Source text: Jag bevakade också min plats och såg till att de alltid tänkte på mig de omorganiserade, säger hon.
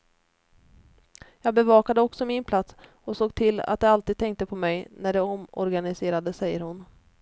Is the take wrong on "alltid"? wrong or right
right